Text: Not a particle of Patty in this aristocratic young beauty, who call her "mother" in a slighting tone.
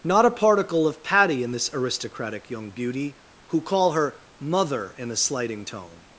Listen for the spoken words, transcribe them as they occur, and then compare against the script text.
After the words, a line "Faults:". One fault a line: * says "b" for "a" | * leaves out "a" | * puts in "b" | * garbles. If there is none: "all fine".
Not a particle of Patty in this aristocratic young beauty, who call her "mother" in a slighting tone.
Faults:
all fine